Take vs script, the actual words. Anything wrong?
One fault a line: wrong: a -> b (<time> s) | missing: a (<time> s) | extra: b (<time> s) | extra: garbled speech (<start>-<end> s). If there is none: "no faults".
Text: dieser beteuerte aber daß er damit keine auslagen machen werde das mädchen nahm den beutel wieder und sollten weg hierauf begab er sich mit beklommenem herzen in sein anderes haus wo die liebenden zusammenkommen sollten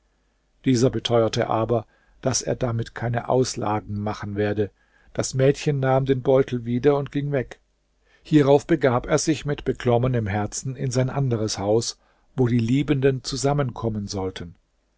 wrong: sollten -> ging (7.1 s)